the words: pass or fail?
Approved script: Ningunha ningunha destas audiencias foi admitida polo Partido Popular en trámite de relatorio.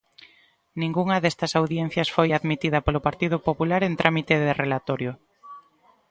fail